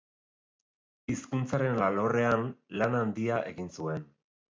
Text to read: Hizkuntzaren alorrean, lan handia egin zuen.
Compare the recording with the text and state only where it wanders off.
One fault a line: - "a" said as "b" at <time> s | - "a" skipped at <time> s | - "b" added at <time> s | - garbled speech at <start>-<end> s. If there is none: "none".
none